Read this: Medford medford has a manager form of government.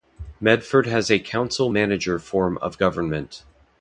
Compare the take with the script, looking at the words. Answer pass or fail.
fail